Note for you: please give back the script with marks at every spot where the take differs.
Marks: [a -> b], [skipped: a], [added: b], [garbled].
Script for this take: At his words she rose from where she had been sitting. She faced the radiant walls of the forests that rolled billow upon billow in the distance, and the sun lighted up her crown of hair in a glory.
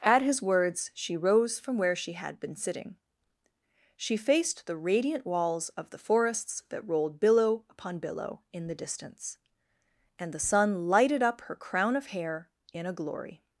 At his words she rose from where she had been sitting. She faced the radiant walls of the forests that rolled billow upon billow in the distance, and the sun lighted up her crown of hair in a glory.